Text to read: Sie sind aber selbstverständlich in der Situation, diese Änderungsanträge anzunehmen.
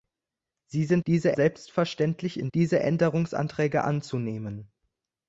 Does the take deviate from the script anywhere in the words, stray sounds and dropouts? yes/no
yes